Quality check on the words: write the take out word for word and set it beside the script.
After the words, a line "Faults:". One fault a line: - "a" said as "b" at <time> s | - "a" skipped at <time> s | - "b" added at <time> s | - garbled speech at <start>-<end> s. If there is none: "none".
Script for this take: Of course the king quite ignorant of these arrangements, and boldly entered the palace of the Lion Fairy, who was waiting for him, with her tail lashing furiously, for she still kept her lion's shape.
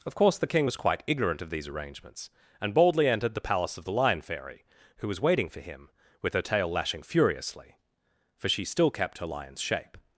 Of course the king was quite ignorant of these arrangements, and boldly entered the palace of the Lion Fairy, who was waiting for him, with her tail lashing furiously, for she still kept her lion's shape.
Faults:
- "was" added at 0.6 s